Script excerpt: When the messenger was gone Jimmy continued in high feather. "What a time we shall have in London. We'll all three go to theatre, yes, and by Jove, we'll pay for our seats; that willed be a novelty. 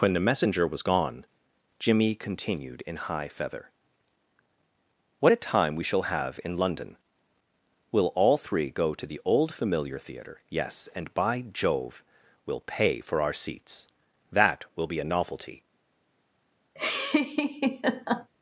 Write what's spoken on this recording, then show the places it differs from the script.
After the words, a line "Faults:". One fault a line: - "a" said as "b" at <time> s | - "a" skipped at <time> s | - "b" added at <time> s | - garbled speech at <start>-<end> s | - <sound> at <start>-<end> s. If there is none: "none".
When the messenger was gone Jimmy continued in high feather. "What a time we shall have in London. We'll all three go to the old familiar theatre, yes, and by Jove, we'll pay for our seats; that will be a novelty.
Faults:
- "the old familiar" added at 9.1 s
- "willed" said as "will" at 14.7 s
- laugh at 16.7-18.3 s